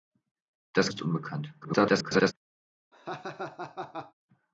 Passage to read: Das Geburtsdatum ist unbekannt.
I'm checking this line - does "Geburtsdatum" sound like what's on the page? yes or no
no